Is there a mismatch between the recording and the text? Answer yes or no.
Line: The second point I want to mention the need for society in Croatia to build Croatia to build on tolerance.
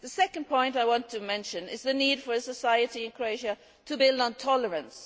yes